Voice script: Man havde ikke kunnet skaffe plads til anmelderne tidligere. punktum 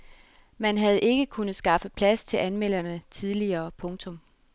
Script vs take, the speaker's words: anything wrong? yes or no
no